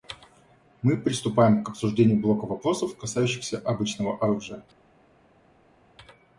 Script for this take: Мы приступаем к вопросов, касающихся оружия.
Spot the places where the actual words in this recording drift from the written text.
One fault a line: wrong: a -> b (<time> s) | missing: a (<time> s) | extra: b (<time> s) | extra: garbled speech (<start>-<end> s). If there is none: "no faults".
extra: обсуждению блока (1.7 s)
extra: обычного (3.6 s)